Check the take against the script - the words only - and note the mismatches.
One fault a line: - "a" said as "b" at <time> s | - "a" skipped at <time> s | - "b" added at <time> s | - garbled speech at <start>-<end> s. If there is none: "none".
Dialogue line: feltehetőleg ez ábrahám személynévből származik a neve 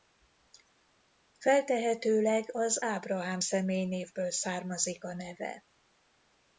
- "ez" said as "az" at 2.5 s